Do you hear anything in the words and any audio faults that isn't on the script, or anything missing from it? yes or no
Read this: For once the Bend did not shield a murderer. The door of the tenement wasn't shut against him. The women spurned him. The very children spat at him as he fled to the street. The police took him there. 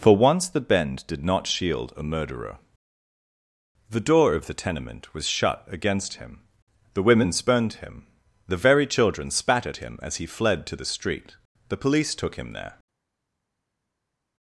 yes